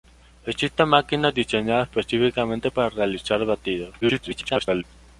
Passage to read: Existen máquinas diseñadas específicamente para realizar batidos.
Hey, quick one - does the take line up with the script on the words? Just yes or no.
no